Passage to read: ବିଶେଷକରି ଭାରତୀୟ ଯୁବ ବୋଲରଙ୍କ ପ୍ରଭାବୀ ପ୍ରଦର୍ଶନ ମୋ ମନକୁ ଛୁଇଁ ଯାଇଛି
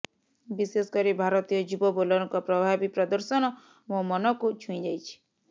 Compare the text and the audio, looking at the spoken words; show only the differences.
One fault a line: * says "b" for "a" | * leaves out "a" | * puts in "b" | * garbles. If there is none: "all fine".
all fine